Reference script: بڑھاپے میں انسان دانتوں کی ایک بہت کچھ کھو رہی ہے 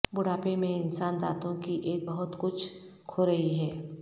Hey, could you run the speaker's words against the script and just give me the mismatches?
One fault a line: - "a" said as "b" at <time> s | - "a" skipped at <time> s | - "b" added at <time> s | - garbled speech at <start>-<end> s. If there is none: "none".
none